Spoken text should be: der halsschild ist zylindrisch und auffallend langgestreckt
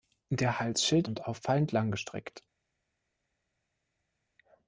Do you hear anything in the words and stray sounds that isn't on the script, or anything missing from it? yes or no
yes